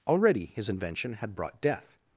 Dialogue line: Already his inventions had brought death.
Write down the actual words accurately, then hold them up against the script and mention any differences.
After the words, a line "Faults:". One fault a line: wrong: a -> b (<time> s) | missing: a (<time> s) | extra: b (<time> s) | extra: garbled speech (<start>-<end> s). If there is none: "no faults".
Already his invention had brought death.
Faults:
wrong: inventions -> invention (0.7 s)